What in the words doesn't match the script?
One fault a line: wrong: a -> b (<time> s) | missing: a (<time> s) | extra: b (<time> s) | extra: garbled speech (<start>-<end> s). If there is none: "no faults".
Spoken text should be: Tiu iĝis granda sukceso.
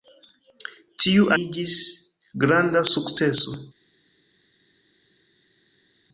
no faults